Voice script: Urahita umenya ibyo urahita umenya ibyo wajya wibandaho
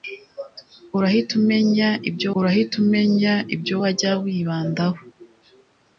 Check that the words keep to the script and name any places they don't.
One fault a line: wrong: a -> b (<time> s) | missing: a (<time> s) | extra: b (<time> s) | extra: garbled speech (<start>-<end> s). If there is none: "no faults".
no faults